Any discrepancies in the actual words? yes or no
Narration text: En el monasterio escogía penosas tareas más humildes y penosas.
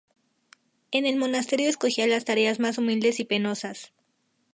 yes